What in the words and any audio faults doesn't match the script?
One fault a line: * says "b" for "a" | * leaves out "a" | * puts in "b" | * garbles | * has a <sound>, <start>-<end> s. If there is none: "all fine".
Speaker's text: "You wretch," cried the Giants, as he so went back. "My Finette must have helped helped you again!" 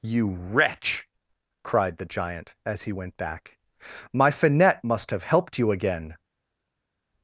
* says "Giant" for "Giants"
* leaves out "so"
* leaves out "helped"